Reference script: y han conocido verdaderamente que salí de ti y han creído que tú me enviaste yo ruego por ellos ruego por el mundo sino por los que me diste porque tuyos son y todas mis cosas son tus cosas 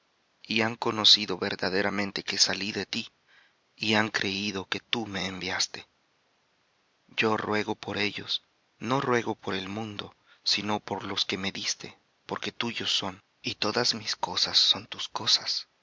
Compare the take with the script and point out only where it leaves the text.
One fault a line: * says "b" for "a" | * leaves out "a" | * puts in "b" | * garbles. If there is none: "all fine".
* puts in "no"